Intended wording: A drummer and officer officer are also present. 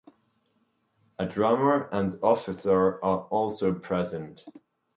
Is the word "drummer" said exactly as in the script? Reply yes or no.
yes